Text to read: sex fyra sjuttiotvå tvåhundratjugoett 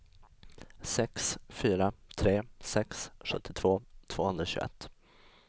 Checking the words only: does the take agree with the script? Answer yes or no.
no